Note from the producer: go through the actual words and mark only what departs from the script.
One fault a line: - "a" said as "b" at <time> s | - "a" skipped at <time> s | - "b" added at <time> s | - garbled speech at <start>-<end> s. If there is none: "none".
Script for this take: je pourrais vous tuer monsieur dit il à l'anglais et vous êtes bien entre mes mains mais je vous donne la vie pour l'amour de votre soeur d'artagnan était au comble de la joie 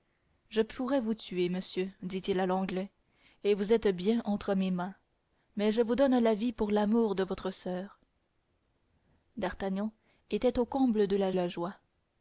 - "la" added at 11.3 s